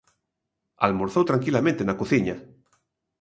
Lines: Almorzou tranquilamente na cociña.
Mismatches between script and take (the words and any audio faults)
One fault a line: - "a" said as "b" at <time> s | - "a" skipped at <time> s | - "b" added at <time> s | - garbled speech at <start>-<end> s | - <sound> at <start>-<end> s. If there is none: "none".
none